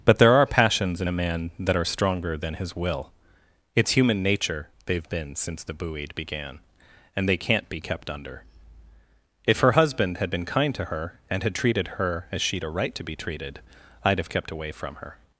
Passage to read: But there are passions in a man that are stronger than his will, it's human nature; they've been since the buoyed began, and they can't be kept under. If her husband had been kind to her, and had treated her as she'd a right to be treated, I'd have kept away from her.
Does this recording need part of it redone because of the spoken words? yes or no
no